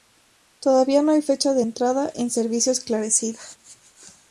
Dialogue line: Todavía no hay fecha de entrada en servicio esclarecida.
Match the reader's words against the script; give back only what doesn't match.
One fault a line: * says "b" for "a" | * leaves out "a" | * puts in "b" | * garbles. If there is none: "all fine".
all fine